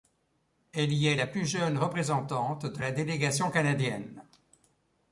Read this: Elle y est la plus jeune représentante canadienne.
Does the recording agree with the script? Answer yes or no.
no